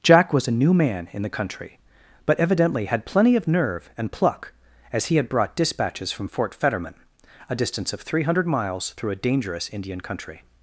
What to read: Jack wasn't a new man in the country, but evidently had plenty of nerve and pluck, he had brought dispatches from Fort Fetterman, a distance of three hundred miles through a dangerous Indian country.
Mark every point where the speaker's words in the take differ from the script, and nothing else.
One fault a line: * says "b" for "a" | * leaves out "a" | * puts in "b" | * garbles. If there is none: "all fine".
* says "was" for "wasn't"
* puts in "as"